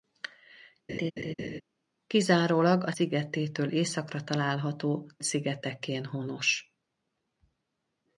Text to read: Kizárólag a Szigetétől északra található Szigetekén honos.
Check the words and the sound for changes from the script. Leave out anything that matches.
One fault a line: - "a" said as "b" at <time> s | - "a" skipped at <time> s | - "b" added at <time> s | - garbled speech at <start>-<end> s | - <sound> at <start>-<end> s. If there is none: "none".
- laugh at 0.9-1.6 s